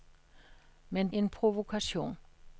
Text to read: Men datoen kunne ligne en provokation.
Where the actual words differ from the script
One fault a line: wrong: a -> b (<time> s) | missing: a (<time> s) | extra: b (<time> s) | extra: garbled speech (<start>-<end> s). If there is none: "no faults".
missing: datoen kunne ligne (1.1 s)